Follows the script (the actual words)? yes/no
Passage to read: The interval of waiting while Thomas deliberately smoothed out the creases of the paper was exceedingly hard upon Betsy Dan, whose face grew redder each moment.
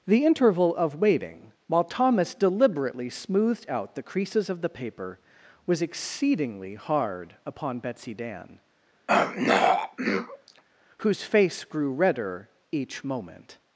yes